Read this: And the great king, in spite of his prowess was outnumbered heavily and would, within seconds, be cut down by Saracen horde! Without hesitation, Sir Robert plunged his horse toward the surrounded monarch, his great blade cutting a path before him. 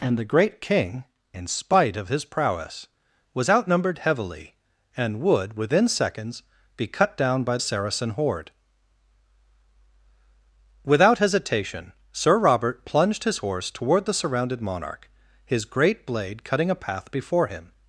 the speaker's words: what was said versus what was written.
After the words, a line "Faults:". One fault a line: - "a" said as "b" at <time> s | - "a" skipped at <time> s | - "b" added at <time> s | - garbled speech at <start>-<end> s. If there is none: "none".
And the great king, in spite of his prowess was outnumbered heavily and would, within seconds, be cut down by Saracen horde! Without hesitation, Sir Robert plunged his horse toward the surrounded monarch, his great blade cutting a path before him.
Faults:
none